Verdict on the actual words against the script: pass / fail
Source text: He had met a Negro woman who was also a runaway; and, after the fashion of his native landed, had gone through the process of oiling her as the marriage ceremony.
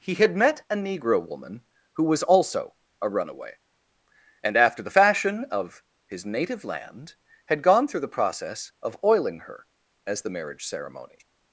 fail